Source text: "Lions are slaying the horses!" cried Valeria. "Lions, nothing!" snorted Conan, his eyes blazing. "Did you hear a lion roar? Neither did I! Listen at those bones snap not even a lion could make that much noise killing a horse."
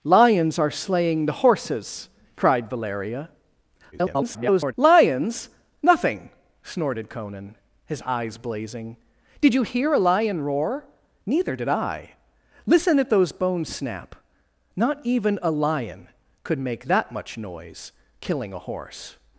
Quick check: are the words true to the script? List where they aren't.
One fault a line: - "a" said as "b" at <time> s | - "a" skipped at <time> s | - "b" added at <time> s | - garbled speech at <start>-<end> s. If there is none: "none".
- garbled speech at 3.9-4.7 s